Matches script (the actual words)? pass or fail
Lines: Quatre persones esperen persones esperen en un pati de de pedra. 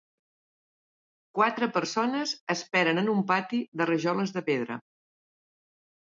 fail